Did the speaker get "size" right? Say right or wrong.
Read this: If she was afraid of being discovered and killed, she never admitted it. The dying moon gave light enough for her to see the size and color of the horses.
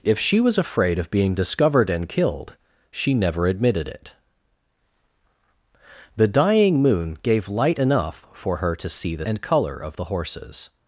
wrong